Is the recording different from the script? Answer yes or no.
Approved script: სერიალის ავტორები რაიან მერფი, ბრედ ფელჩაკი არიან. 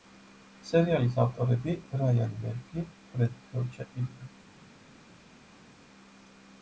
no